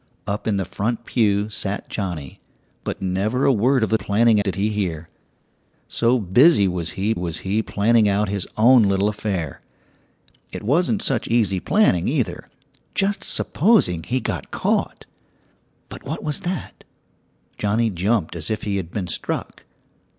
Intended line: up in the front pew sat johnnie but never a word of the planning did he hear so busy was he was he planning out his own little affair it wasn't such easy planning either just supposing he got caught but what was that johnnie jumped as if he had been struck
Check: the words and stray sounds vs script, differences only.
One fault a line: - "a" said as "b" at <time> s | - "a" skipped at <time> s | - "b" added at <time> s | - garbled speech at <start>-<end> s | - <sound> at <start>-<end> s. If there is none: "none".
none